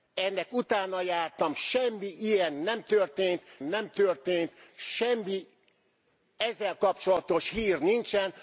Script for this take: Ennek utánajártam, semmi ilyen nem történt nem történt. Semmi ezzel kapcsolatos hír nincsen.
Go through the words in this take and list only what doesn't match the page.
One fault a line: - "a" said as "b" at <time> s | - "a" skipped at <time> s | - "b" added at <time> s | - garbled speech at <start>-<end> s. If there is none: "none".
none